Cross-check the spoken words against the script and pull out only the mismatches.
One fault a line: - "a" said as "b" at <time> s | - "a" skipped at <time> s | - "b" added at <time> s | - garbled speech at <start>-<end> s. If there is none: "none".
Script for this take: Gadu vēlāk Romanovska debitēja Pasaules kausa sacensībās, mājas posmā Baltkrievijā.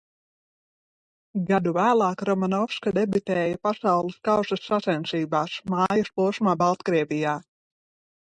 none